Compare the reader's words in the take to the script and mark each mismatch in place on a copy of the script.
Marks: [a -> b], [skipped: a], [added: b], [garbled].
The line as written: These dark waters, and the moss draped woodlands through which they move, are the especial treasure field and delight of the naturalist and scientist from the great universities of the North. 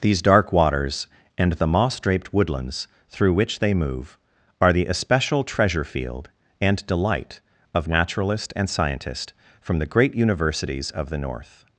These dark waters, and the moss draped woodlands through which they move, are the especial treasure field and delight of [skipped: the] naturalist and scientist from the great universities of the North.